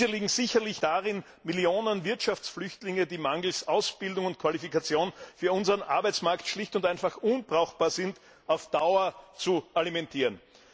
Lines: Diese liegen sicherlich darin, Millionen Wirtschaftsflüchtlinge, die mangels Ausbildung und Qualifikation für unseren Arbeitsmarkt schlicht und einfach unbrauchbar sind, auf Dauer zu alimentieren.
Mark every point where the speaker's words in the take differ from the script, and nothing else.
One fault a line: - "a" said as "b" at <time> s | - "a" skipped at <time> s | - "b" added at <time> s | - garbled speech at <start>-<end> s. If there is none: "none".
none